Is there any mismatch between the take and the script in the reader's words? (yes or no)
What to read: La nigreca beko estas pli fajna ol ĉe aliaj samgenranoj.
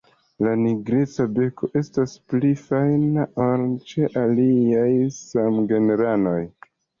no